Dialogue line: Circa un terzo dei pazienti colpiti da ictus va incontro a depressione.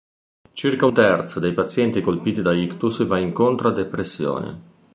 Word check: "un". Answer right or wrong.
wrong